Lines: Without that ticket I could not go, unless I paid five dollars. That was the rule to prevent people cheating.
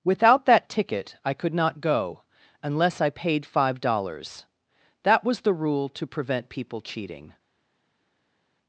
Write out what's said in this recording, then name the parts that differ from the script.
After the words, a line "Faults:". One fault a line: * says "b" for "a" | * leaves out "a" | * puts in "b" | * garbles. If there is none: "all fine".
Without that ticket I could not go, unless I paid five dollars. That was the rule to prevent people cheating.
Faults:
all fine